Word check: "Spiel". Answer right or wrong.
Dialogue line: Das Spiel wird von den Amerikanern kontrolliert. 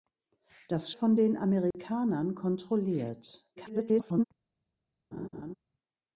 wrong